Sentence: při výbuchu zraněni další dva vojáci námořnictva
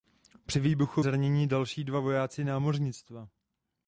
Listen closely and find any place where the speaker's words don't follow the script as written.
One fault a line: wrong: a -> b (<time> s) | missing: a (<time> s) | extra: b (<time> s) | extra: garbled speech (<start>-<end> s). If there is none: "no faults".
no faults